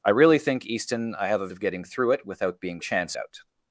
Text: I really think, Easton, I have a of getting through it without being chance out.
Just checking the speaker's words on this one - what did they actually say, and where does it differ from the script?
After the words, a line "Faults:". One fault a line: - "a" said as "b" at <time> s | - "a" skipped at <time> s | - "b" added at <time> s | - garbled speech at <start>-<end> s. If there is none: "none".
I really think, Easton, I have a of getting through it without being chance out.
Faults:
none